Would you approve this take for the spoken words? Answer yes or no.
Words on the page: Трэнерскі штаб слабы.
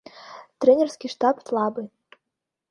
yes